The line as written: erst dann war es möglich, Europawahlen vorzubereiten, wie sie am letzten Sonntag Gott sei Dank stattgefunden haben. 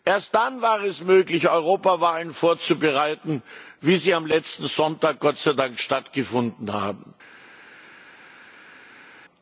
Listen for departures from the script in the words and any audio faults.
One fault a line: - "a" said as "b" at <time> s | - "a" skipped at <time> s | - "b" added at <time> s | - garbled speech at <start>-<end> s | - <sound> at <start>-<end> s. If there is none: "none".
none